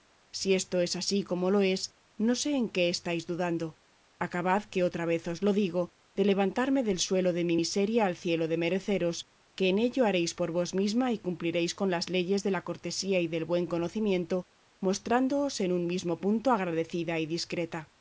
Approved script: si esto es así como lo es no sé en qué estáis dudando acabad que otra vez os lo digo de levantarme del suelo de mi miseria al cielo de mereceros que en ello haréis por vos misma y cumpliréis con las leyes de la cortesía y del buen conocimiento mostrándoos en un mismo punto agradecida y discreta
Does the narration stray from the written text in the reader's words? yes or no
no